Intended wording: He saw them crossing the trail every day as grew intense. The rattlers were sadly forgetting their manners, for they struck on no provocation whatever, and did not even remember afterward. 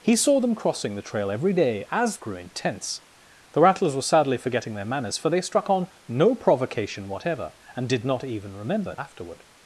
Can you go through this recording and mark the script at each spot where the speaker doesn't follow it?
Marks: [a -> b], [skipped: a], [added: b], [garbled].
He saw them crossing the trail every day as grew intense. The rattlers were sadly forgetting their manners, for they struck on no provocation whatever, and did not even remember afterward.